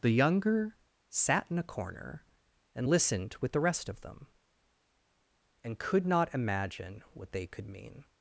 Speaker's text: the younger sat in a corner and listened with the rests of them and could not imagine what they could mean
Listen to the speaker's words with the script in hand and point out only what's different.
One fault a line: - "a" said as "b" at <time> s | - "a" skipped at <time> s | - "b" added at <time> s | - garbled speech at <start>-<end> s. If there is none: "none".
- "rests" said as "rest" at 3.6 s